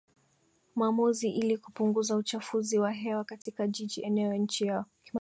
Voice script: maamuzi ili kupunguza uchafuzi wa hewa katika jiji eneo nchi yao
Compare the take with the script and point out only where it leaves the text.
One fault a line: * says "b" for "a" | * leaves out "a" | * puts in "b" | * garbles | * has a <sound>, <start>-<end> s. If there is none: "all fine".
* has a dropout, 3.4-3.5 s